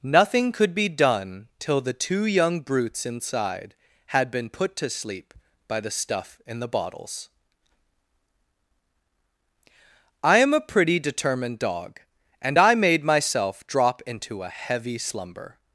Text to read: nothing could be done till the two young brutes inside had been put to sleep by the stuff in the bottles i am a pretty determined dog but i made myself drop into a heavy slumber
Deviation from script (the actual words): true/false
true